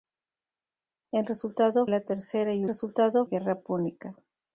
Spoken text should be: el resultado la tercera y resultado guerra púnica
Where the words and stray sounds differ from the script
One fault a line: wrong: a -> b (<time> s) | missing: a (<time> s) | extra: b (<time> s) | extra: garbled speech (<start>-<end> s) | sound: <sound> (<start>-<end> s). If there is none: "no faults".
no faults